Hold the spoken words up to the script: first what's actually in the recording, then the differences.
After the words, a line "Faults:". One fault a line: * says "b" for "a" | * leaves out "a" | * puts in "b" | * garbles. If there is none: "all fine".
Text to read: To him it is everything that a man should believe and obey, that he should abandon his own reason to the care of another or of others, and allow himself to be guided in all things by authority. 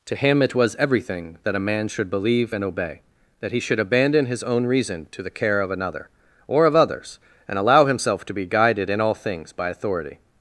To him it was everything that a man should believe and obey, that he should abandon his own reason to the care of another or of others, and allow himself to be guided in all things by authority.
Faults:
* says "was" for "is"